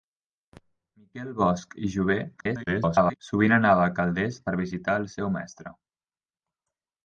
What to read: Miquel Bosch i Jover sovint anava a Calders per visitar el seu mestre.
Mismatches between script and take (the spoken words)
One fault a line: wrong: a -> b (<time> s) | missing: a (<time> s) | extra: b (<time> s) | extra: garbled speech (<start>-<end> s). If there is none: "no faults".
extra: garbled speech (2.4-3.2 s)